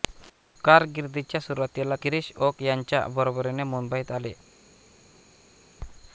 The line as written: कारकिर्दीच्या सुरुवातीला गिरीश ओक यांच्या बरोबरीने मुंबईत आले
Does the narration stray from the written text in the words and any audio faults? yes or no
no